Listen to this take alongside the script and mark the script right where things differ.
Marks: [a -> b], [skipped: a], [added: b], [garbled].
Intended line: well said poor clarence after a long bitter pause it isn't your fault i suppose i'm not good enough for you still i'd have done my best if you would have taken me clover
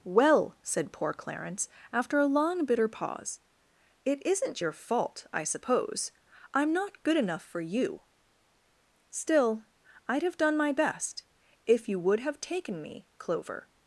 well said poor clarence after a long bitter pause it isn't your fault i suppose i'm not good enough for you still i'd have done my best if you would have taken me clover